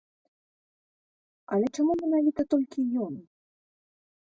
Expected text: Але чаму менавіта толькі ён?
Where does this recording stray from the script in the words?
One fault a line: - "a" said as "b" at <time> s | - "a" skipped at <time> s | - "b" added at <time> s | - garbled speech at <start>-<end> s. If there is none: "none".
none